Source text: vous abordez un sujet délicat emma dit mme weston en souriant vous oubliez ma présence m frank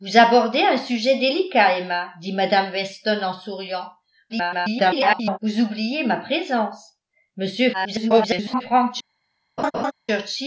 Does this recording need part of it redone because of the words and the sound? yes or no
yes